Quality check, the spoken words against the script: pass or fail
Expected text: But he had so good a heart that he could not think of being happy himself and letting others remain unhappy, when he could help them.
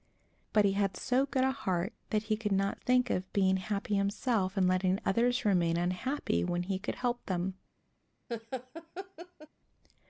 pass